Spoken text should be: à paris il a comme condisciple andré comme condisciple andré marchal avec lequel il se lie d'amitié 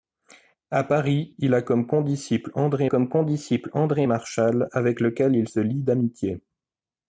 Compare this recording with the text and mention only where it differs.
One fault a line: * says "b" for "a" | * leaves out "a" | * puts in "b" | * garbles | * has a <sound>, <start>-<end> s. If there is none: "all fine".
all fine